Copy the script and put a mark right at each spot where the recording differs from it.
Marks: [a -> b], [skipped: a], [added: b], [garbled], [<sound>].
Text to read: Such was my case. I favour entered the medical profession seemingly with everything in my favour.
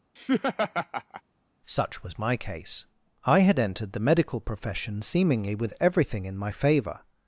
[laugh] Such was my case. I [favour -> had] entered the medical profession seemingly with everything in my favour.